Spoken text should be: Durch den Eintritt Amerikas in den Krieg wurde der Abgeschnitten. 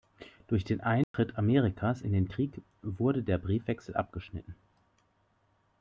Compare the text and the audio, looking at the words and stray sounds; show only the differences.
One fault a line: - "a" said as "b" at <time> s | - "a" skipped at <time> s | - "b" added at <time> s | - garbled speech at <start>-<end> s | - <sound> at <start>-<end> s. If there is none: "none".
- dropout at 1.0-1.1 s
- "Briefwechsel" added at 3.4 s